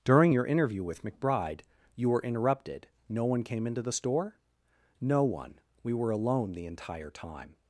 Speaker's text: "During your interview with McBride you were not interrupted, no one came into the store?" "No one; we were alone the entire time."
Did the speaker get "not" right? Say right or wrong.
wrong